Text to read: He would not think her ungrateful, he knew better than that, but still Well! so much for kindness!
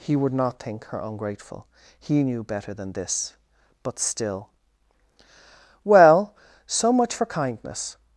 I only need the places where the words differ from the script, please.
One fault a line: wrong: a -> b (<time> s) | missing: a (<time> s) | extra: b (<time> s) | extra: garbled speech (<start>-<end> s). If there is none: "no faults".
wrong: that -> this (2.9 s)